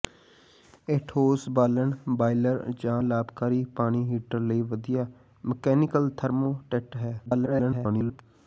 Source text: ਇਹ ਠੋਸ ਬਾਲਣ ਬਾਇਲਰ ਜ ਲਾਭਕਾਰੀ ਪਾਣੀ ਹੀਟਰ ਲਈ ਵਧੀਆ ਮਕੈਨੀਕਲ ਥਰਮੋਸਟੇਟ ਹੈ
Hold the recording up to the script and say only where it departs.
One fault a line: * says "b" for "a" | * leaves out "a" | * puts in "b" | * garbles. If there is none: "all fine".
* garbles